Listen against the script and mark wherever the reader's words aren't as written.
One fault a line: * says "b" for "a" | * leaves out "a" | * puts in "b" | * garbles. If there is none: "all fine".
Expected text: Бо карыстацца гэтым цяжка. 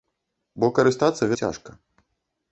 * leaves out "гэтым"